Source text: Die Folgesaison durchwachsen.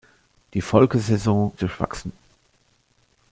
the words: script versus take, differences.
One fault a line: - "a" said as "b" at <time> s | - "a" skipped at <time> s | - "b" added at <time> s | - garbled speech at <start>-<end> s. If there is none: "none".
none